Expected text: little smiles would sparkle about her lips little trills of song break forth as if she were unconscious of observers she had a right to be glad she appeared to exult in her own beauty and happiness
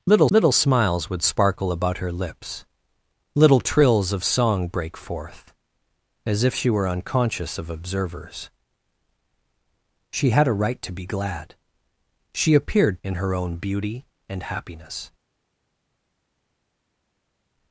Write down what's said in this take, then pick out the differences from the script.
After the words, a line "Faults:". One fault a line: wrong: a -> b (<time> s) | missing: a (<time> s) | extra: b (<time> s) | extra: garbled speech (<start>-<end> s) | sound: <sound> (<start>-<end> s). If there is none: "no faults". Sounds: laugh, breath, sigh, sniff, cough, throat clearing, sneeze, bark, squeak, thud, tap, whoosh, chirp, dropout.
little little smiles would sparkle about her lips little trills of song break forth as if she were unconscious of observers she had a right to be glad she appeared in her own beauty and happiness
Faults:
extra: little (0.3 s)
missing: to exult (13.0 s)